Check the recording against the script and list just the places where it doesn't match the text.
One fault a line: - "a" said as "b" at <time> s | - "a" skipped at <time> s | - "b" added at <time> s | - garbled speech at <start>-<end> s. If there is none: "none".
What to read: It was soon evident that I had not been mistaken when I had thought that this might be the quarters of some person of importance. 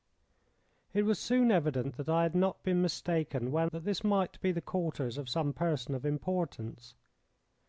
- "I had thought" skipped at 3.7 s